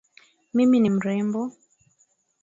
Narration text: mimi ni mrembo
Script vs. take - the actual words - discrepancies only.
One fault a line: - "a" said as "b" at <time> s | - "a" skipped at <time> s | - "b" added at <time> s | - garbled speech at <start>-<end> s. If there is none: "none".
none